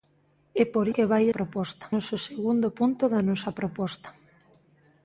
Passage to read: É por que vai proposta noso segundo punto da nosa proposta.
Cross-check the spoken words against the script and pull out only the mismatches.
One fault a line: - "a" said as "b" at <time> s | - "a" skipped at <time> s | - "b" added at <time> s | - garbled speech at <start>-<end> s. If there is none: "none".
none